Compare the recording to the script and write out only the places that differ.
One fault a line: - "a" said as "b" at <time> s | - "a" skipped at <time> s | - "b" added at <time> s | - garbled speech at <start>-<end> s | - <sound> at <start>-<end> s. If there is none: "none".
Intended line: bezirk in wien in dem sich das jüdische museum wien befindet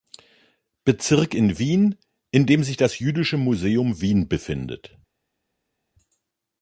none